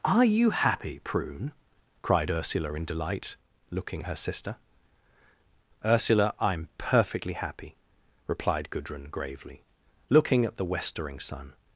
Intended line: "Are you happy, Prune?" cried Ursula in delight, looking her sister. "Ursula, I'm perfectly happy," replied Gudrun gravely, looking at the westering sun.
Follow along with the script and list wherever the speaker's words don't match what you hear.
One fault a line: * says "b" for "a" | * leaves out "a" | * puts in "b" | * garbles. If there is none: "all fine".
all fine